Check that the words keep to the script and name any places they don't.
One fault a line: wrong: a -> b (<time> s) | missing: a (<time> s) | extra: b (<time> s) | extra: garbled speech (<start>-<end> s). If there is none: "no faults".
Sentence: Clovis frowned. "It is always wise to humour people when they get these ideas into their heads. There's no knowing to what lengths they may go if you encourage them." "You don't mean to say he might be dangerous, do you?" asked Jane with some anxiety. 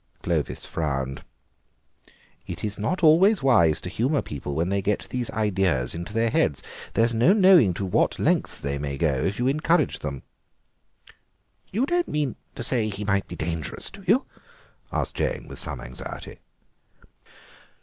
extra: not (2.8 s)